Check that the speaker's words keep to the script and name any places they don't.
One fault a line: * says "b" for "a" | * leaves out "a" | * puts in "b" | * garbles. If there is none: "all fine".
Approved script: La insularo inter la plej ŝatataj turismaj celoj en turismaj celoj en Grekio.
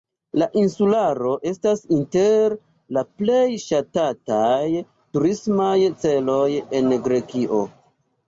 * puts in "estas"
* leaves out "turismaj celoj en"